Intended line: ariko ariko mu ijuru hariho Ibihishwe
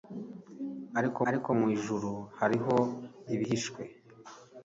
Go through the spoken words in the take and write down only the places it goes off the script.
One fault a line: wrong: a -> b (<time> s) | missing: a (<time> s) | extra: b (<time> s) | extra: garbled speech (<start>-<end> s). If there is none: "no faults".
no faults